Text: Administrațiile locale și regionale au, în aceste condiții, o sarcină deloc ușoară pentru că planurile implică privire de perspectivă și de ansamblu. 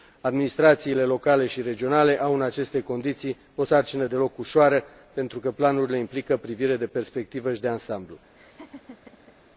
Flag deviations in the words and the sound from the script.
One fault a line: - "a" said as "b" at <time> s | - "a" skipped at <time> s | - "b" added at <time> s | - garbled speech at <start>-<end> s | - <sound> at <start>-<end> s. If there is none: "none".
- laugh at 8.4-9.4 s